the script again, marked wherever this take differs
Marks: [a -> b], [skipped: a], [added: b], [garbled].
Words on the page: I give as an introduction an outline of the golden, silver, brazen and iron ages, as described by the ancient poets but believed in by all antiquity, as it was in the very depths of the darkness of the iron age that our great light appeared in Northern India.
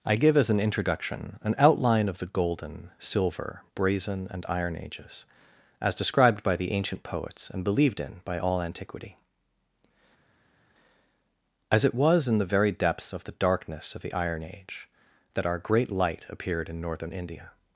I give as an introduction an outline of the golden, silver, brazen and iron ages, as described by the ancient poets [but -> and] believed in by all antiquity, as it was in the very depths of the darkness of the iron age that our great light appeared in Northern India.